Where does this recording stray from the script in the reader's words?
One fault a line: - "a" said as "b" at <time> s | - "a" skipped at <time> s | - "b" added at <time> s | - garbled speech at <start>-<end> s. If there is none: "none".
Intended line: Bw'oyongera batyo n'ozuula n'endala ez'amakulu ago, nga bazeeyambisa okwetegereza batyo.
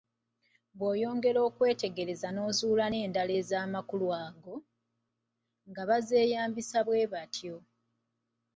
- "batyo" said as "okwetegereza" at 1.5 s
- "okwetegereza" said as "bwe" at 6.8 s